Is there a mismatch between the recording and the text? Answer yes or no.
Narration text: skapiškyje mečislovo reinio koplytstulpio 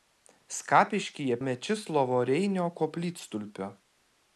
no